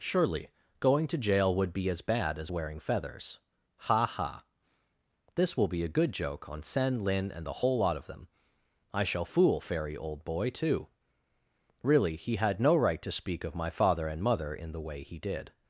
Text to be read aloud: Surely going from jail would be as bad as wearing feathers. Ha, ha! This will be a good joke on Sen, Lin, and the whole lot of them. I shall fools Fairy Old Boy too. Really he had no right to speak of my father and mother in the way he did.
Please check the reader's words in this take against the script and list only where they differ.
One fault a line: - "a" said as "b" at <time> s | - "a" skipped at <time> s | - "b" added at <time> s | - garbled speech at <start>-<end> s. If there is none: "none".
- "from" said as "to" at 1.1 s
- "fools" said as "fool" at 9.2 s